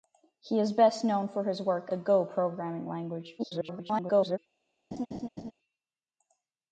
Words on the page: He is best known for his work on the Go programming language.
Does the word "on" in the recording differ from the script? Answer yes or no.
yes